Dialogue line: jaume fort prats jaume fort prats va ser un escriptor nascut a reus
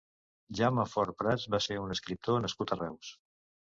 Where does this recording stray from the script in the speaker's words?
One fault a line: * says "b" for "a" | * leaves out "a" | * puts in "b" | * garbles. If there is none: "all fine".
* leaves out "jaume fort prats"